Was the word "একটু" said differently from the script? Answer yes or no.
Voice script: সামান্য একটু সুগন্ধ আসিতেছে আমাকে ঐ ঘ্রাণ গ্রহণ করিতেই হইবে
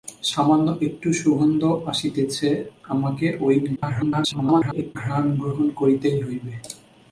no